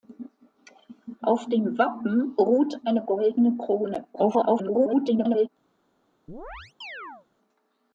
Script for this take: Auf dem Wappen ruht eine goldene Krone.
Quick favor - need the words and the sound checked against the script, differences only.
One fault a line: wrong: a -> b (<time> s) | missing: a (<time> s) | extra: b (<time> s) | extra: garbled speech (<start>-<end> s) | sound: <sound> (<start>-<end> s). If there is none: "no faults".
extra: garbled speech (4.1-5.5 s)
sound: chirp (6.3-7.3 s)